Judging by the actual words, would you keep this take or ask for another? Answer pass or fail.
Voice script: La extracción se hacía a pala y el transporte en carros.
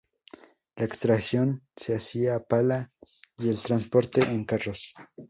pass